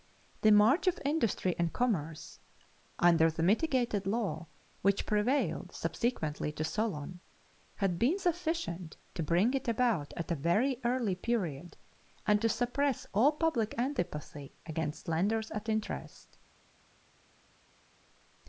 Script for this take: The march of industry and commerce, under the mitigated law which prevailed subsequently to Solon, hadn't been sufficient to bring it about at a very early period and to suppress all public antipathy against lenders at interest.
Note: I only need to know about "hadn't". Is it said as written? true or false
false